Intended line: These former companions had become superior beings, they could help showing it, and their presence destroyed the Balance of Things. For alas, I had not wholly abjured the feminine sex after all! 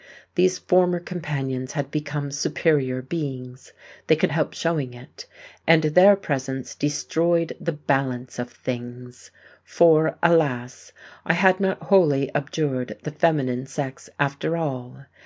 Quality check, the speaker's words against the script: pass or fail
pass